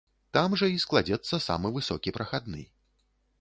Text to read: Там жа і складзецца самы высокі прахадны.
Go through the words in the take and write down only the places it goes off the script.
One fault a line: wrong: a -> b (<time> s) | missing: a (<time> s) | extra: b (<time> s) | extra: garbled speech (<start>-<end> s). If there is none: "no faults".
no faults